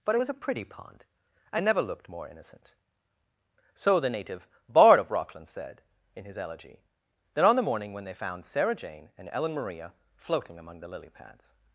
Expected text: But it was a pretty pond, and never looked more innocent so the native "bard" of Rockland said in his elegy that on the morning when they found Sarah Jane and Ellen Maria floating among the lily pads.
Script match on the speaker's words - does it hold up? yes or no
yes